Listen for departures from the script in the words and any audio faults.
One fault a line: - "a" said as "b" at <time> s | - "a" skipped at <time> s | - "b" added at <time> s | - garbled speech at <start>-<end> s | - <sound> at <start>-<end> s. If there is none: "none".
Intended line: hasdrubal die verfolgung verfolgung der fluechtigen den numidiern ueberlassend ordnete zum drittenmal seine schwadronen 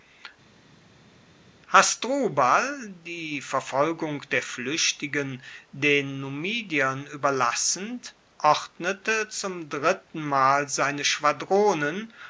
- "verfolgung" skipped at 4.2 s